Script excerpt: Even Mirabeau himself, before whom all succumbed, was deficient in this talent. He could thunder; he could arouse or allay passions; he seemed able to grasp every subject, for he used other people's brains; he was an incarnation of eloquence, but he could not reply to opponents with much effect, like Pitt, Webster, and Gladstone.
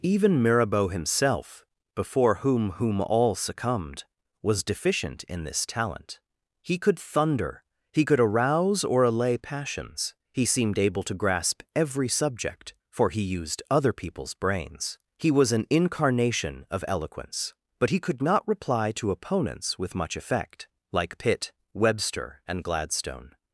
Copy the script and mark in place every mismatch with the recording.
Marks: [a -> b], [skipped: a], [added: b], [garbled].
Even Mirabeau himself, before whom [added: whom] all succumbed, was deficient in this talent. He could thunder; he could arouse or allay passions; he seemed able to grasp every subject, for he used other people's brains; he was an incarnation of eloquence, but he could not reply to opponents with much effect, like Pitt, Webster, and Gladstone.